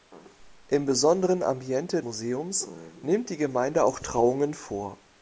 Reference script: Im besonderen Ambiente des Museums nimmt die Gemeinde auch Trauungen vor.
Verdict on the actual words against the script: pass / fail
fail